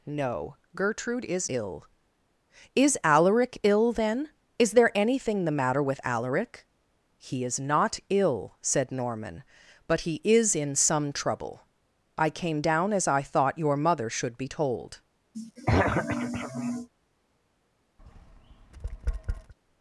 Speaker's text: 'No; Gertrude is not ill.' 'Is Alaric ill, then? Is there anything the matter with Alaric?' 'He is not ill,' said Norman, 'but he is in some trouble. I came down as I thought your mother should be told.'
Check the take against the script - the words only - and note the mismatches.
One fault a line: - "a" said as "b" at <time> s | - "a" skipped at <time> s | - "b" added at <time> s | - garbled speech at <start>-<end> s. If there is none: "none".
- "not" skipped at 1.5 s